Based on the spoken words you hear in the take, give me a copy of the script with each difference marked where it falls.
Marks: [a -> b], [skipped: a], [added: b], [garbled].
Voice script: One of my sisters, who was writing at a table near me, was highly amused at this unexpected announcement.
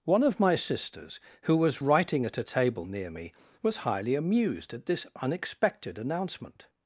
One of my sisters, who was writing at a table near me, was highly amused at this unexpected announcement.